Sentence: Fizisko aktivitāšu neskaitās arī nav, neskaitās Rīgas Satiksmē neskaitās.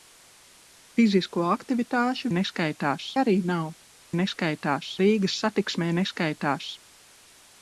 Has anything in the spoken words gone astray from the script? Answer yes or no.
no